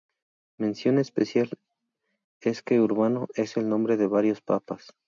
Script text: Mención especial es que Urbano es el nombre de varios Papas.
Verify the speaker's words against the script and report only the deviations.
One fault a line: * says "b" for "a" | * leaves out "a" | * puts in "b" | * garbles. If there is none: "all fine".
all fine